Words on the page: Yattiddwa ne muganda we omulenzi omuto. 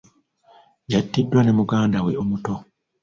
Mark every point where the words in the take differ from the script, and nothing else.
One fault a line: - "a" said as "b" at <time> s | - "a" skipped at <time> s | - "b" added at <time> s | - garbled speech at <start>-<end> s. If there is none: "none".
- "omulenzi" skipped at 2.1 s